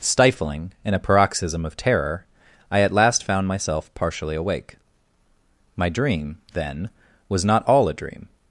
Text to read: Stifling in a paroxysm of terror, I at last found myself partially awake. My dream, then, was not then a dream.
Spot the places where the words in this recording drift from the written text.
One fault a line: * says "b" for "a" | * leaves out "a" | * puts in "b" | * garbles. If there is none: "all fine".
* says "all" for "then"